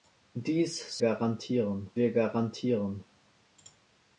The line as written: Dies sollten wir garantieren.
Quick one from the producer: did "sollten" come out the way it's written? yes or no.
no